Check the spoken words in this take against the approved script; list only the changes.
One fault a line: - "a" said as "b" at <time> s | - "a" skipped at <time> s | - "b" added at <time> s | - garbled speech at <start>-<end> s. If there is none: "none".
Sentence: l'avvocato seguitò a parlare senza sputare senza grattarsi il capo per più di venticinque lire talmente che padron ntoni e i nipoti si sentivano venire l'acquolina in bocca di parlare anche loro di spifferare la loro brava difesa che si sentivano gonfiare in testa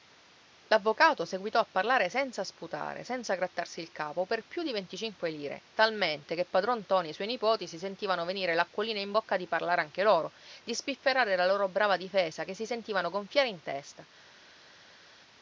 - "suoi" added at 7.1 s